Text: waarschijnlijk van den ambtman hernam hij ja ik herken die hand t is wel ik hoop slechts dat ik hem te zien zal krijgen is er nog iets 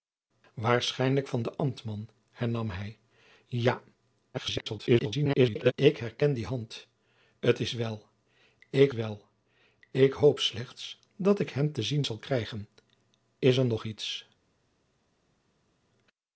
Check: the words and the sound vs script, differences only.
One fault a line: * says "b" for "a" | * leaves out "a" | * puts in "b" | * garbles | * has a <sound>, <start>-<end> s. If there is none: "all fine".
* garbles
* puts in "wel ik"